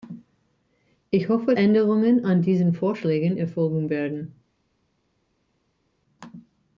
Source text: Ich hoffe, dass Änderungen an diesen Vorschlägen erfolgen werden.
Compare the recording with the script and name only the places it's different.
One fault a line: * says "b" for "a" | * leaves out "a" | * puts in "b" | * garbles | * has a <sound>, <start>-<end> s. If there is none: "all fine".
* leaves out "dass"